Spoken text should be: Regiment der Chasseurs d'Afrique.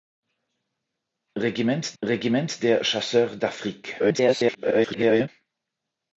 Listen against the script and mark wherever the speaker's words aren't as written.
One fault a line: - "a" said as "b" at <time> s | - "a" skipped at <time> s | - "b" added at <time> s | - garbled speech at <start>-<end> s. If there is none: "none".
- "regiment" added at 2.0 s
- garbled speech at 4.0-5.3 s